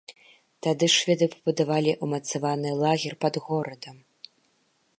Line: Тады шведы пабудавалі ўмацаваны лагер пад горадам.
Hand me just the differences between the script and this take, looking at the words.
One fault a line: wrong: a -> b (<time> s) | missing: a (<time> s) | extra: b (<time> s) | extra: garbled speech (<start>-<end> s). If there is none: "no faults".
no faults